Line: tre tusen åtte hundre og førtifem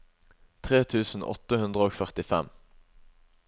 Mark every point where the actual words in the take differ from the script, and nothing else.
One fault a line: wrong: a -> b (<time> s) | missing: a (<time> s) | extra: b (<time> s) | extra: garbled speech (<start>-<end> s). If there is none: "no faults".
no faults